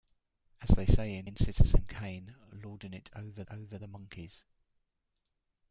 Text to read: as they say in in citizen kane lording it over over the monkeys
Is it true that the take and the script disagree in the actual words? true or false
false